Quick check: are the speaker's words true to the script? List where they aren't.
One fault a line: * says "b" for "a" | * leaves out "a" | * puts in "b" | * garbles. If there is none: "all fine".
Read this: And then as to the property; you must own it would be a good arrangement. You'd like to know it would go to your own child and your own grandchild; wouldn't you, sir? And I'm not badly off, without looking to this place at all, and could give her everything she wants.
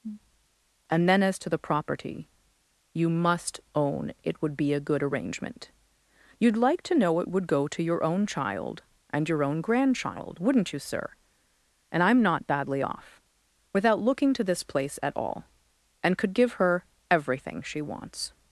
all fine